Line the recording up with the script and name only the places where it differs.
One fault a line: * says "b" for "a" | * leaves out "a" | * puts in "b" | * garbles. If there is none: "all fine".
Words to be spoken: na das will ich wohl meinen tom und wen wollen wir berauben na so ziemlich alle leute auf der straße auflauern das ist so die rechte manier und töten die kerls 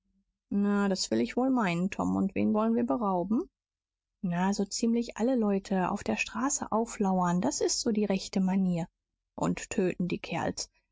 all fine